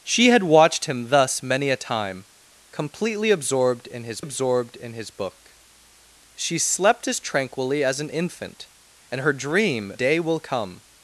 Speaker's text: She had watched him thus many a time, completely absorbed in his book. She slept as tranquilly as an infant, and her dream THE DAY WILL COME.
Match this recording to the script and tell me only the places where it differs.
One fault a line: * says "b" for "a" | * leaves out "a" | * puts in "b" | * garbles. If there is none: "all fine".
* puts in "absorbed in his"
* leaves out "THE"